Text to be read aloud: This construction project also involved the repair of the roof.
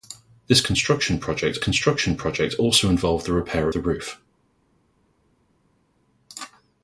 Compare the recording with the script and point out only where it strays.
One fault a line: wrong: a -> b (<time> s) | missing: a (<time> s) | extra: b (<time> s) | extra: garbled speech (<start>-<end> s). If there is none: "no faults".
extra: construction project (1.6 s)
missing: of (3.7 s)